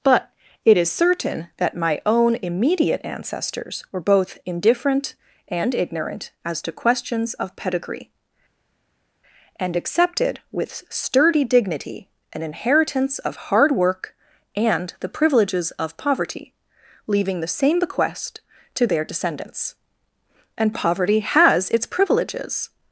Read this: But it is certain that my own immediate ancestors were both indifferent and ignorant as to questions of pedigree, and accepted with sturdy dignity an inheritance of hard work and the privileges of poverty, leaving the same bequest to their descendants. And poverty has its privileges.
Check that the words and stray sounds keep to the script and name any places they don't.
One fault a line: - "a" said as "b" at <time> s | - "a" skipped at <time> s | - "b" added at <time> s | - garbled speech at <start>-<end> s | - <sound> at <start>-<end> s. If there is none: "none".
none